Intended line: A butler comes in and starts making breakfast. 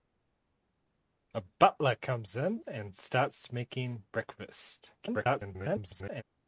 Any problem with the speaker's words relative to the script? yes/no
yes